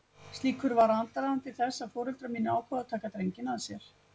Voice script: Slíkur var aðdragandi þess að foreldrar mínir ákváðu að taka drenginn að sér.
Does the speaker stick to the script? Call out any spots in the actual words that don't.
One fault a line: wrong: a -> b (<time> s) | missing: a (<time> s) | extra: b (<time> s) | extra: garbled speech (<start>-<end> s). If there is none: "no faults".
no faults